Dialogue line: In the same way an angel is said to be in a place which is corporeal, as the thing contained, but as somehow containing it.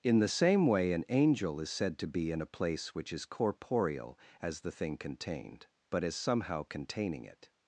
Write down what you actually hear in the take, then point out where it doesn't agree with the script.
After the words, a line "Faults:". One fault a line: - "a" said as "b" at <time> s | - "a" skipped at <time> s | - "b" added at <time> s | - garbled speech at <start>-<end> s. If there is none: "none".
In the same way an angel is said to be in a place which is corporeal, as the thing contained, but as somehow containing it.
Faults:
none